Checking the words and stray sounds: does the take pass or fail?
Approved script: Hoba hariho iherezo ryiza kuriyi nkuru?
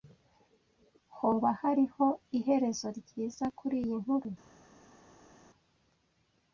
pass